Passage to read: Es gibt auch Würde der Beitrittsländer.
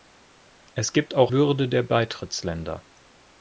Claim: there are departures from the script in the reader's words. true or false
false